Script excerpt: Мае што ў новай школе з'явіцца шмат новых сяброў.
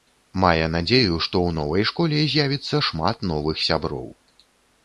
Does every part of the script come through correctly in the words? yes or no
no